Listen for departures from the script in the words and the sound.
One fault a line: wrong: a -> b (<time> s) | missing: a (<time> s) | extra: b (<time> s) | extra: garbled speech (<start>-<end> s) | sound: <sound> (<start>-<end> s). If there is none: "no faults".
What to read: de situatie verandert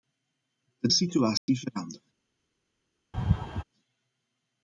sound: dropout (1.4-1.5 s)
sound: laugh (3.1-3.6 s)